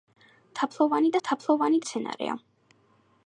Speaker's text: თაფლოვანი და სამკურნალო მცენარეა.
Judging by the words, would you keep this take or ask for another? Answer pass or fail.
fail